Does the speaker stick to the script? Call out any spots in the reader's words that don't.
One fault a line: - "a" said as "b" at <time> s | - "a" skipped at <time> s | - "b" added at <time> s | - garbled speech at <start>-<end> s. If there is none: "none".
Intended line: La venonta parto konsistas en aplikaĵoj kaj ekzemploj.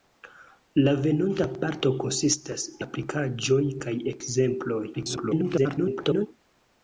- "en" skipped at 2.6 s
- garbled speech at 4.9-6.3 s